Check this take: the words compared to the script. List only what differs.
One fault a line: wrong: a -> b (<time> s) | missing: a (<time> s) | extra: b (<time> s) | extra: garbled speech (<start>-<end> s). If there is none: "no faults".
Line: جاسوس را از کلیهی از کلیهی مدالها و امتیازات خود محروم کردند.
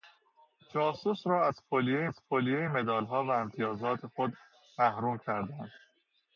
no faults